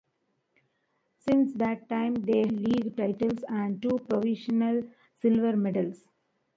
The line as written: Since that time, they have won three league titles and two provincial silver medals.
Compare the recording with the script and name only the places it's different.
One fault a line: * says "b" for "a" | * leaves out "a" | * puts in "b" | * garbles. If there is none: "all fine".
* leaves out "have won three"